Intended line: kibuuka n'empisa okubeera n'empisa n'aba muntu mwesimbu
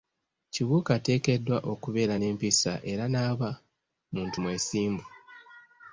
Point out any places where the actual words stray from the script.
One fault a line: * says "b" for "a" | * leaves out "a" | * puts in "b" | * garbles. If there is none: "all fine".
* says "ateekeddwa" for "n'empisa"
* puts in "era"